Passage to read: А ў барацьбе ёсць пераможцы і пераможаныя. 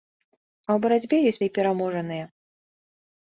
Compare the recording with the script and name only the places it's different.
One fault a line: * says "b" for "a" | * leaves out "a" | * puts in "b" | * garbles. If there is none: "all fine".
* leaves out "пераможцы"